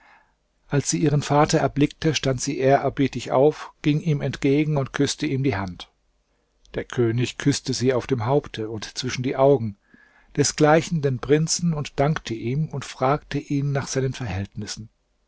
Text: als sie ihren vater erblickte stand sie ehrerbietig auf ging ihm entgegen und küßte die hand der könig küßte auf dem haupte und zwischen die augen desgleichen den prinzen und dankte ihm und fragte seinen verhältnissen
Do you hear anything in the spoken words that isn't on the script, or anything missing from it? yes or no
yes